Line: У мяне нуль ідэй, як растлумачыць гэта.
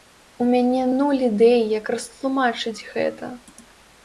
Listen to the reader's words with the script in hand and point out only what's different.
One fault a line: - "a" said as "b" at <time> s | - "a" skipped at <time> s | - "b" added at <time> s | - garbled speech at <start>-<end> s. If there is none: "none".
none